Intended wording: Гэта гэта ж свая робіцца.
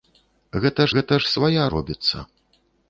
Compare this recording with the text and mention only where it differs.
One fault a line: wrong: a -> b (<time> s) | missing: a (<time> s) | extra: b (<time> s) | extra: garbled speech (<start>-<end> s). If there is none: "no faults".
no faults